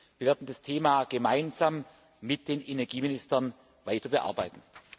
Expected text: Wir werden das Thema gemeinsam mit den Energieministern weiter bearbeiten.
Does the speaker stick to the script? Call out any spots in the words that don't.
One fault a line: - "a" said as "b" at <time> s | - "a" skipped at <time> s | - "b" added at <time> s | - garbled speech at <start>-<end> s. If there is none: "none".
none